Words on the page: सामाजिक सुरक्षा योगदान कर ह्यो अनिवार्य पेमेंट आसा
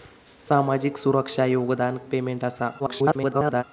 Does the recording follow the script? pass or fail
fail